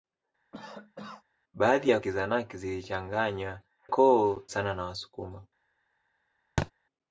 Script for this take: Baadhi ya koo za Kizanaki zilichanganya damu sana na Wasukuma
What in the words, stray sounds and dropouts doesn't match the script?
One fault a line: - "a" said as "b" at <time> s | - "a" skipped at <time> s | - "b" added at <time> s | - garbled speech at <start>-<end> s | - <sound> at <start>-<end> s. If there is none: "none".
- cough at 0.5-1.2 s
- "koo za" skipped at 2.0 s
- "damu" said as "koo" at 3.9 s
- thud at 6.6-6.7 s